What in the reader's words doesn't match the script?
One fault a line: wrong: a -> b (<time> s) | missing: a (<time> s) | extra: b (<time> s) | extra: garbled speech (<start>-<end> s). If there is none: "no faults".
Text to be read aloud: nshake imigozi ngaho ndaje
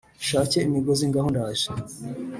no faults